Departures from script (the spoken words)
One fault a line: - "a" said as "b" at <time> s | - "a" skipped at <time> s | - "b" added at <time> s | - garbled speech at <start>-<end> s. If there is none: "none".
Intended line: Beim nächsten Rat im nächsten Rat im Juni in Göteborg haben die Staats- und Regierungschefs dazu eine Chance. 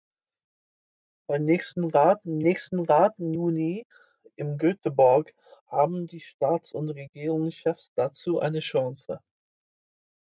none